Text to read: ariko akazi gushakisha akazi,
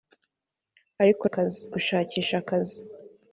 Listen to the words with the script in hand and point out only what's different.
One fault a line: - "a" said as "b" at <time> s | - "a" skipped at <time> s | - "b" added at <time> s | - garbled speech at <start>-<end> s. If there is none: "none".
none